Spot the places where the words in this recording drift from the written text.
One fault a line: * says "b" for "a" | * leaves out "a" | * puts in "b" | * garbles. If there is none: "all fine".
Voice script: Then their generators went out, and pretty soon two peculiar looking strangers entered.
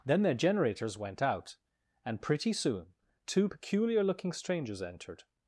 all fine